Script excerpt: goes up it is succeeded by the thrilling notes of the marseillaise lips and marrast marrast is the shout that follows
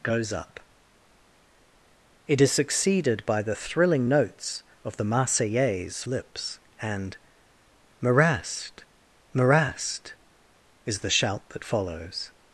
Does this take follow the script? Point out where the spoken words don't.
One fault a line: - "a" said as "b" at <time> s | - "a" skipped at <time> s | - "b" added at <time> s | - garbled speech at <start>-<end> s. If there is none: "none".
none